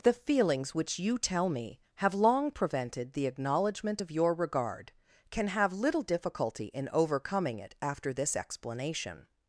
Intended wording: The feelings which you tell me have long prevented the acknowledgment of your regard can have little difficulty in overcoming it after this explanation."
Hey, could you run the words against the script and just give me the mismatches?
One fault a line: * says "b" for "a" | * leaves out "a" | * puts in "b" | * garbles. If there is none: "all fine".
all fine